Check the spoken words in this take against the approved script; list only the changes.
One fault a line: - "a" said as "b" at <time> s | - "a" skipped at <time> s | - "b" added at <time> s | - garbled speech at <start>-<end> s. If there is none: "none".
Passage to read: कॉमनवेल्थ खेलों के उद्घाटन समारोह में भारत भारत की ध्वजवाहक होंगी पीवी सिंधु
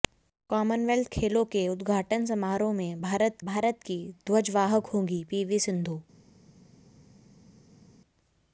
none